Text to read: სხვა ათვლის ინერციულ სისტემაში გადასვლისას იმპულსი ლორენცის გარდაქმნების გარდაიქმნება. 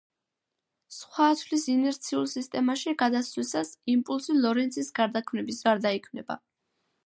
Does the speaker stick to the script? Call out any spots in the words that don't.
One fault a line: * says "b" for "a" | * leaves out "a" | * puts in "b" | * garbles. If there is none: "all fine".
all fine